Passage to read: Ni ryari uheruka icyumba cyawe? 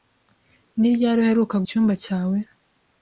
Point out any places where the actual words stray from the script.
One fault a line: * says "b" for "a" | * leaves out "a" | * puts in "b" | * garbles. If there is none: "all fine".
all fine